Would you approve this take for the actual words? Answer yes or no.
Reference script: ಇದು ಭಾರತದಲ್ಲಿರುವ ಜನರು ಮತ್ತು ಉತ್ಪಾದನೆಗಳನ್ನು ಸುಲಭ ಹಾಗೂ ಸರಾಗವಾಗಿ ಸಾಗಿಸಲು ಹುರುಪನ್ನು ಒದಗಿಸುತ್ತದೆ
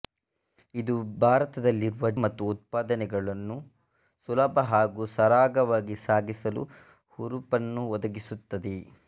no